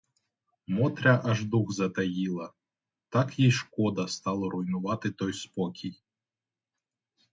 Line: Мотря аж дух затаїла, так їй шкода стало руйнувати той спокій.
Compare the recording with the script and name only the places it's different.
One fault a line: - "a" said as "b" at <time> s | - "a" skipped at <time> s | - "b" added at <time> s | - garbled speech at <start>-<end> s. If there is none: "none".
none